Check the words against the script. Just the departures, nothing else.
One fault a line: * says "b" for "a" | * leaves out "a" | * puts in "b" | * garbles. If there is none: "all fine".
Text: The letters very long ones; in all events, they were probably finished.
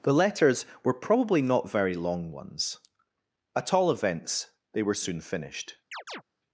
* puts in "were probably not"
* says "at" for "in"
* says "soon" for "probably"